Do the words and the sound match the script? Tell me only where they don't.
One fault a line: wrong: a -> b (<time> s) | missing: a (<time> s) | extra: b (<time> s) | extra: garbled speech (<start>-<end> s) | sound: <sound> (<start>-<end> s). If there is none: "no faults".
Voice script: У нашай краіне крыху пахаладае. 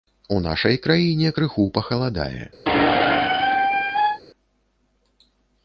sound: squeak (2.7-4.2 s)